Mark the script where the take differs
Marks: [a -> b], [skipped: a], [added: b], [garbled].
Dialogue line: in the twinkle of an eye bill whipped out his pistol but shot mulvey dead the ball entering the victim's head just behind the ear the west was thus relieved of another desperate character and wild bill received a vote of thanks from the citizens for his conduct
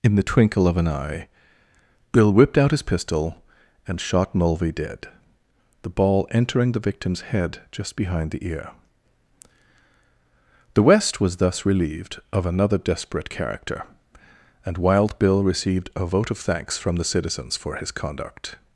in the twinkle of an eye bill whipped out his pistol [but -> and] shot mulvey dead the ball entering the victim's head just behind the ear the west was thus relieved of another desperate character and wild bill received a vote of thanks from the citizens for his conduct